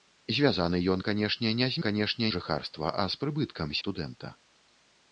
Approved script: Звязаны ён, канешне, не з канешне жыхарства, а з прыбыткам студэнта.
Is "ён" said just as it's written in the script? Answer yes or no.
yes